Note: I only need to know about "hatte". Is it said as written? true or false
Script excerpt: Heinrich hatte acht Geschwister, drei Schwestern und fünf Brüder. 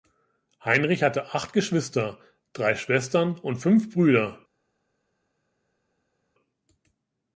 true